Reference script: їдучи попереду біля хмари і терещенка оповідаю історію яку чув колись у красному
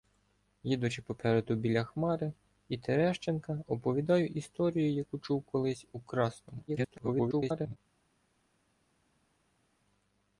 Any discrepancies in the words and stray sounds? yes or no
yes